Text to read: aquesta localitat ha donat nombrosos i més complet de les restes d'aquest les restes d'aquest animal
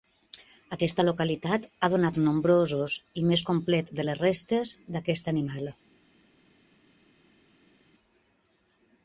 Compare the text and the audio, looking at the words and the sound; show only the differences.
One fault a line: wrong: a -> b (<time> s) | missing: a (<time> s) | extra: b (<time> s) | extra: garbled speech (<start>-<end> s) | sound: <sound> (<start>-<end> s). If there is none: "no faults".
missing: les restes d'aquest (5.3 s)